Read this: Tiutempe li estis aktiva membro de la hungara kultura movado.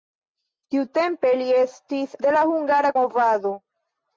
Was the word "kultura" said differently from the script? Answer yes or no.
yes